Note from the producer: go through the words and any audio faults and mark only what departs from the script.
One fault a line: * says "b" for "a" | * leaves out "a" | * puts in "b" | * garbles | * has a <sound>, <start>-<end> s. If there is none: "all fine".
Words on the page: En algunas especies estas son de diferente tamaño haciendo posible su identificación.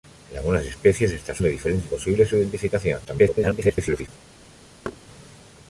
* leaves out "son"
* leaves out "tamaño haciendo"
* garbles
* has a thud, 4.8-5.0 s